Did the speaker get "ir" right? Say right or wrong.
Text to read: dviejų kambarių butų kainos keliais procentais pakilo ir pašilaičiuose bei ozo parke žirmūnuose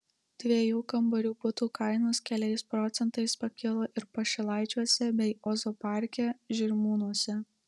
right